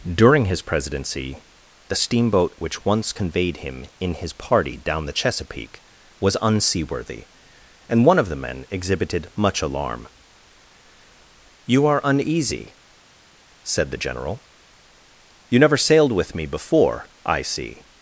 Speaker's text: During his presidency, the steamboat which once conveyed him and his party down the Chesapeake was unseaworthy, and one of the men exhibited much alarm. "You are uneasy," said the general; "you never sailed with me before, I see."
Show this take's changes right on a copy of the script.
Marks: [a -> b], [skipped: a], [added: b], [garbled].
During his presidency, the steamboat which once conveyed him [and -> in] his party down the Chesapeake was unseaworthy, and one of the men exhibited much alarm. "You are uneasy," said the general; "you never sailed with me before, I see."